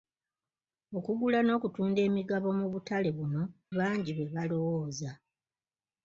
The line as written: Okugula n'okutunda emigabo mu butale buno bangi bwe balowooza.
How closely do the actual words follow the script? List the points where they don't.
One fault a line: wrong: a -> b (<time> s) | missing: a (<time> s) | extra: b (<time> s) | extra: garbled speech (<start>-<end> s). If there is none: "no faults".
no faults